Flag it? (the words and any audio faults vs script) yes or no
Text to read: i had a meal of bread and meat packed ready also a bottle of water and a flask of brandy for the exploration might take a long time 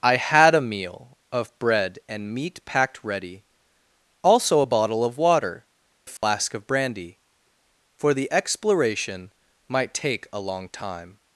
yes